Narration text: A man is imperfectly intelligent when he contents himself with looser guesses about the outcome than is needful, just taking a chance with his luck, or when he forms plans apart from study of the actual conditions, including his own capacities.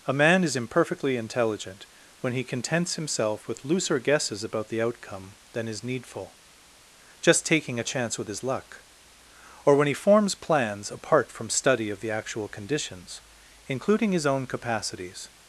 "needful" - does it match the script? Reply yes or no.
yes